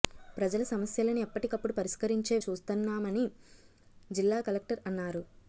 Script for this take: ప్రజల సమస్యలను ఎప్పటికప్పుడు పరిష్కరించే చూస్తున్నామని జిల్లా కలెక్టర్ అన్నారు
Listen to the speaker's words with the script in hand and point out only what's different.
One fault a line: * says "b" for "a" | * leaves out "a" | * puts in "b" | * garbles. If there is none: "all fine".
all fine